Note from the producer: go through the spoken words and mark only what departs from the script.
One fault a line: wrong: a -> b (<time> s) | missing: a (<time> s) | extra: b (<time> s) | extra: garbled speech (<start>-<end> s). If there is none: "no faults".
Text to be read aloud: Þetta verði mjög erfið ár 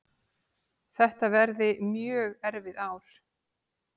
no faults